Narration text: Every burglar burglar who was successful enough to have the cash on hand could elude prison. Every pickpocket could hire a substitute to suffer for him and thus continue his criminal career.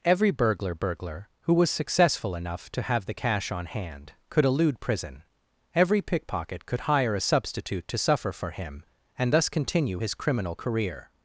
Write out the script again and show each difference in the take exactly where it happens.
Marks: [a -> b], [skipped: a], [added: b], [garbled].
Every burglar burglar who was successful enough to have the cash on hand could elude prison. Every pickpocket could hire a substitute to suffer for him and thus continue his criminal career.